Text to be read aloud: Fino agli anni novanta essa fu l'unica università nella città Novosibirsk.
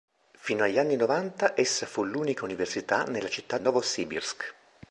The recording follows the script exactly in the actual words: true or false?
true